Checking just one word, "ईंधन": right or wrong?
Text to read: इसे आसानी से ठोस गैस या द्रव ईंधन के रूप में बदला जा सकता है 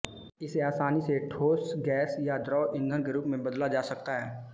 right